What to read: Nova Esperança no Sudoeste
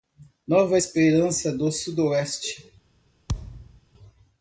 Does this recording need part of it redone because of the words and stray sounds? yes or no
yes